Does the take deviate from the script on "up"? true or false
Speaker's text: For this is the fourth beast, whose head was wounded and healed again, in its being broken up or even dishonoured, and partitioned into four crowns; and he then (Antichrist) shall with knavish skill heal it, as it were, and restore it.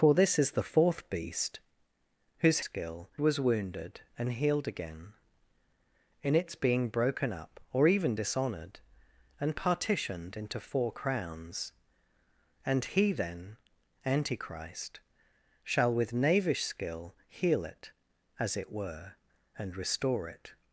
false